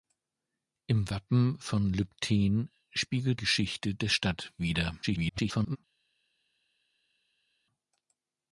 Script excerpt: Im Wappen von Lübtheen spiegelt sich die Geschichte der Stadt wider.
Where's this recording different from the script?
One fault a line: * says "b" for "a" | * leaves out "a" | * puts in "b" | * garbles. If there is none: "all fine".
* leaves out "sich die"
* garbles